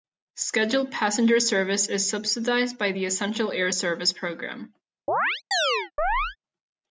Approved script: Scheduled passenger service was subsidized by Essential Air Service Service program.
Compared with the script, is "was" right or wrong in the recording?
wrong